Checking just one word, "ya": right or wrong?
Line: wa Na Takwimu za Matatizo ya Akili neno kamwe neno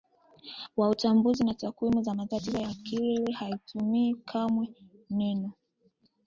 right